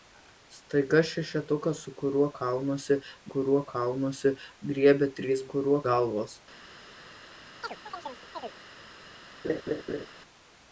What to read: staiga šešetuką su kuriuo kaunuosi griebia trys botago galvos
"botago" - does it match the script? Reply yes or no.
no